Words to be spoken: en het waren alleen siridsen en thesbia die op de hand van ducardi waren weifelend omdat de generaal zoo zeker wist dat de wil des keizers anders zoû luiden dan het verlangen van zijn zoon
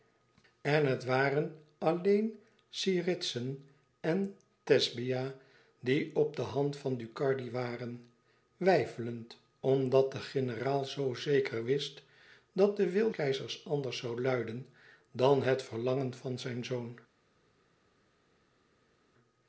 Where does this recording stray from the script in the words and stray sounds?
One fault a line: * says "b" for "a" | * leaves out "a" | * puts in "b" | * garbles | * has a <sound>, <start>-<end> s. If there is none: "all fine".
* leaves out "des"